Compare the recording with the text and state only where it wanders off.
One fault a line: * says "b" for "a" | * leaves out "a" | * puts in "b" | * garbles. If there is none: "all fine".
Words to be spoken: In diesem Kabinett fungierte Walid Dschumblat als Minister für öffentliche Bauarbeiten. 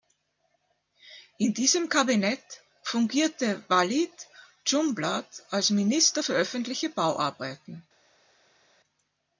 all fine